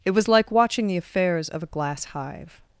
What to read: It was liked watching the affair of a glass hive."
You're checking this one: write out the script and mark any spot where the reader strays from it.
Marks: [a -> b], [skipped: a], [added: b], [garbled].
It was [liked -> like] watching the [affair -> affairs] of a glass hive."